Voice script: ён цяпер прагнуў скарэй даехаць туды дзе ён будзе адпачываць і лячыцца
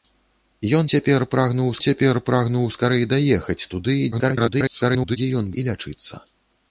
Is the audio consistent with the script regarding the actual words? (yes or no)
no